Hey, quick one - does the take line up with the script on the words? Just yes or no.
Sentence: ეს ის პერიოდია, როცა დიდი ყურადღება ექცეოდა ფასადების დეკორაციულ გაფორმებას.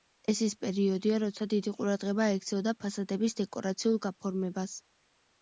yes